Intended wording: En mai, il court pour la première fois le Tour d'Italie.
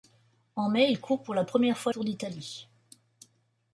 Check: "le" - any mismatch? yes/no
yes